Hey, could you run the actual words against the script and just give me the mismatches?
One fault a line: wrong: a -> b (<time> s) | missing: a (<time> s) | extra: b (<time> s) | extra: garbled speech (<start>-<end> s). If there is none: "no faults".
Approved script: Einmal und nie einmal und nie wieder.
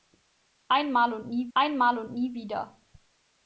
no faults